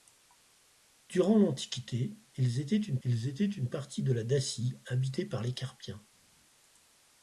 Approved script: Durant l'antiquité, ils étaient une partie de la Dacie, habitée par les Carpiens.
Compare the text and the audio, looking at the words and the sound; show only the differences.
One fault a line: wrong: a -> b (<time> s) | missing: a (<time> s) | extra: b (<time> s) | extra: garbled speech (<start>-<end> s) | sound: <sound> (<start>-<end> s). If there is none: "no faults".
extra: ils étaient une (3.0 s)